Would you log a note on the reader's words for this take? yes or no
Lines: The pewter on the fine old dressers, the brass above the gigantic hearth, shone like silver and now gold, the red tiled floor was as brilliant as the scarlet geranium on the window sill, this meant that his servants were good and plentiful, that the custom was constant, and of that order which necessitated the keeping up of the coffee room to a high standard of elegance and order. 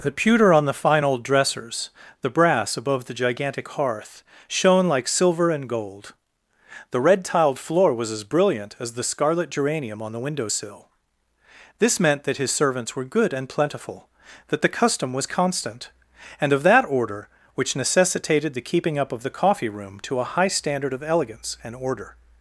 yes